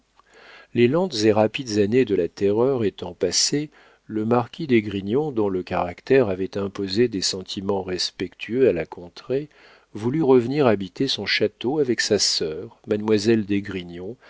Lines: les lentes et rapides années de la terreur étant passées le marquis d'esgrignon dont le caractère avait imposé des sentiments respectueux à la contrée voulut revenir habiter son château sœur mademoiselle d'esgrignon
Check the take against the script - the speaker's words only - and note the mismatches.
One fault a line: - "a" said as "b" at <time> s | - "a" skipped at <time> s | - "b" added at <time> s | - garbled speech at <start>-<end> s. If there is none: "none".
- "avec sa" added at 11.8 s